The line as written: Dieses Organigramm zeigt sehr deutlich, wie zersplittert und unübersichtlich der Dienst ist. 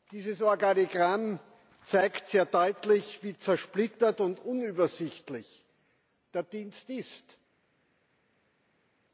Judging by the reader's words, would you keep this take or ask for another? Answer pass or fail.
pass